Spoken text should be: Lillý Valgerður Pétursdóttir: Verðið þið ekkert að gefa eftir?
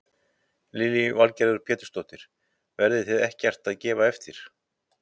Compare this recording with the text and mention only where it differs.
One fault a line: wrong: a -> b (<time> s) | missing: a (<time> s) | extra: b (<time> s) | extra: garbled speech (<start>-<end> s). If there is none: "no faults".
no faults